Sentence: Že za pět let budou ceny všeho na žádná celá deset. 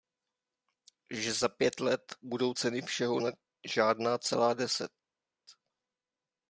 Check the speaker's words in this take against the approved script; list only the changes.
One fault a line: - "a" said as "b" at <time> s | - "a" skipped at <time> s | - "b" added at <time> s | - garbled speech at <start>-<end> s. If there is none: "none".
none